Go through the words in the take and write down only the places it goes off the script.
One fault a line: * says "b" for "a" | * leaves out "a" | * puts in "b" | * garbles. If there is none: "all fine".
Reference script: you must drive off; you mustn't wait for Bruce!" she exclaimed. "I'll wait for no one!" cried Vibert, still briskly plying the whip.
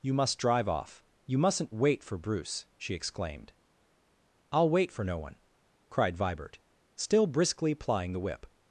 all fine